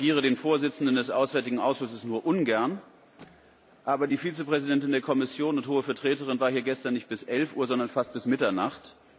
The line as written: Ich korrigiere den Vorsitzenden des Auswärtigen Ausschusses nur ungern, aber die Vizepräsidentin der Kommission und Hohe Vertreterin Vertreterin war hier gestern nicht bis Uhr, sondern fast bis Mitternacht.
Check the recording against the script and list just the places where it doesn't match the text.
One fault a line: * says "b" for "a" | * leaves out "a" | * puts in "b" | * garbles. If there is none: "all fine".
* leaves out "Vertreterin"
* puts in "elf"